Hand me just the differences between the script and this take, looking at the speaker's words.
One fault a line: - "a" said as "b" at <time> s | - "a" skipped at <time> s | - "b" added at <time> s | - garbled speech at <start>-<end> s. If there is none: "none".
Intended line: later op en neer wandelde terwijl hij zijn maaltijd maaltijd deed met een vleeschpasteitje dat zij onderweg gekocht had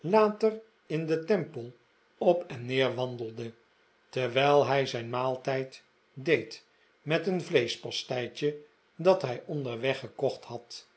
- "in den temple" added at 0.9 s
- "maaltijd" skipped at 5.8 s
- "zij" said as "hij" at 9.2 s